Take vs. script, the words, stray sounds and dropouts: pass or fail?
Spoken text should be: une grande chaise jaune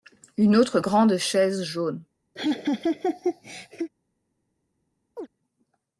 fail